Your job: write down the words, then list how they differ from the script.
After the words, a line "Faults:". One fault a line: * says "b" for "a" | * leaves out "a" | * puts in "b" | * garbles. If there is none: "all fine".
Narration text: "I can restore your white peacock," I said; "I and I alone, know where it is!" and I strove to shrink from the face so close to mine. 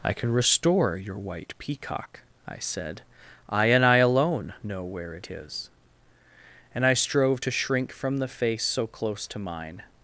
"I can restore your white peacock," I said; "I and I alone, know where it is!" and I strove to shrink from the face so close to mine.
Faults:
all fine